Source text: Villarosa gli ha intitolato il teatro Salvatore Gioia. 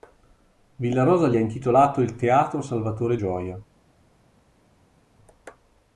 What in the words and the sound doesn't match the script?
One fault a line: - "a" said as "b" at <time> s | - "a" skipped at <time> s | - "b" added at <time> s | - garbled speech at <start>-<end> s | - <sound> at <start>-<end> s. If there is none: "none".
none